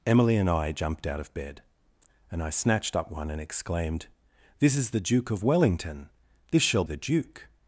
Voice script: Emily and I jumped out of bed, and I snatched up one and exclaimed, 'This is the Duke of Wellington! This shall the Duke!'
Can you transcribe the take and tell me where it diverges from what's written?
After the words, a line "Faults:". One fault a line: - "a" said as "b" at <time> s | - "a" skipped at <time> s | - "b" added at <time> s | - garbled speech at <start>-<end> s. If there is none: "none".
Emily and I jumped out of bed, and I snatched up one and exclaimed, 'This is the Duke of Wellington! This shall the Duke!'
Faults:
none